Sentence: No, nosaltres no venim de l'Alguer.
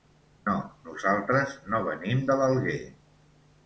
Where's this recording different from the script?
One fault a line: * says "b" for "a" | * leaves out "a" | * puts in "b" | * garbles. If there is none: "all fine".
all fine